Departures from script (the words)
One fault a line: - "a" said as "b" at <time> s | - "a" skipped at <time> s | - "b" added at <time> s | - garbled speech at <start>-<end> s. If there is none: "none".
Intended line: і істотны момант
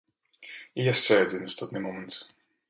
- "яшчэ адзін" added at 0.9 s